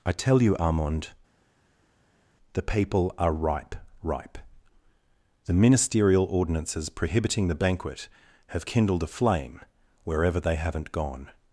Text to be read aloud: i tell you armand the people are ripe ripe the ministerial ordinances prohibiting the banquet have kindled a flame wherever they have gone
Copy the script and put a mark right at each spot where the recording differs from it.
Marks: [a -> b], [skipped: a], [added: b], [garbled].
i tell you armand the people are ripe ripe the ministerial ordinances prohibiting the banquet have kindled a flame wherever they [have -> haven't] gone